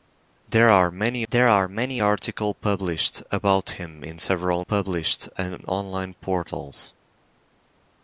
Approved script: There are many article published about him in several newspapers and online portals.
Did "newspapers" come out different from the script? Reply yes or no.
yes